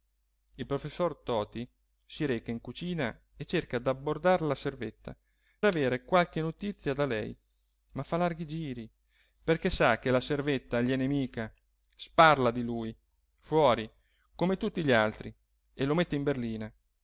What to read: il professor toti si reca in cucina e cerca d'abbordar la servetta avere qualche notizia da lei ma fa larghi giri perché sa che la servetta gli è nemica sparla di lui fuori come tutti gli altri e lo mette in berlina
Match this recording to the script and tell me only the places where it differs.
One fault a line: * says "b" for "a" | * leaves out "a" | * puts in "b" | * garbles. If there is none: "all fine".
all fine